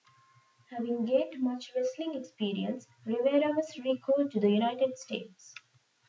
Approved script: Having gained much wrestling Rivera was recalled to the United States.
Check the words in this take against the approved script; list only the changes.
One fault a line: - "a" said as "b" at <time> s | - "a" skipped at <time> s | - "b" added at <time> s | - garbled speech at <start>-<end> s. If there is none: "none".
- "experience" added at 2.1 s